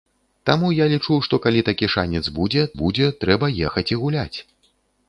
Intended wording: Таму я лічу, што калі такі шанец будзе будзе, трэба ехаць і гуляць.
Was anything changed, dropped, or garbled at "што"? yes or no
no